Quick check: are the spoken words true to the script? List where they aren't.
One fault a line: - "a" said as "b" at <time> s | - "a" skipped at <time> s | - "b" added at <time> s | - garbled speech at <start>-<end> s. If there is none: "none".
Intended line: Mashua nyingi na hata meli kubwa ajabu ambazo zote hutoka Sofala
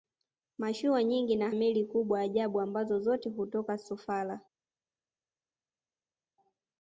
- "hata" skipped at 1.5 s